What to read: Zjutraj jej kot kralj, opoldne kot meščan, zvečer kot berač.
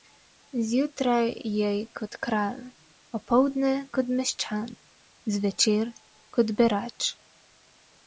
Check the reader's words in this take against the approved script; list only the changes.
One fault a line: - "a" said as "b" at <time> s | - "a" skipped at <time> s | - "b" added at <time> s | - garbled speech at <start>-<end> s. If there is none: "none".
none